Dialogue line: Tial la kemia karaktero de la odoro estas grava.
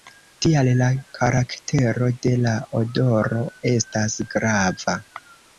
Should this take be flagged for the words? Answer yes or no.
yes